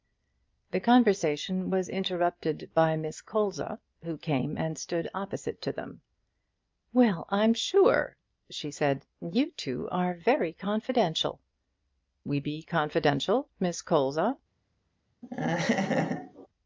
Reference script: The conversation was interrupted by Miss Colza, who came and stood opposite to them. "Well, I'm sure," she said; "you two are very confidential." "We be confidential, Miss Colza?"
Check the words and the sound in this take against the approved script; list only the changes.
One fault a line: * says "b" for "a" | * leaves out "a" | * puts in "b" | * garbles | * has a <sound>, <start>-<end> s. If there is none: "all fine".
* has a laugh, 15.2-16.5 s